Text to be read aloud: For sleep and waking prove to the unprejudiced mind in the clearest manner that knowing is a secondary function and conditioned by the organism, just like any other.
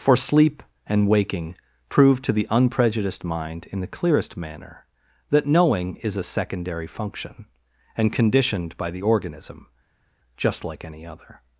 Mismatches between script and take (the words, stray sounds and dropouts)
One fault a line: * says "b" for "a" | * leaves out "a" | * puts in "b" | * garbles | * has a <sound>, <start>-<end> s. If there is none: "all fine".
all fine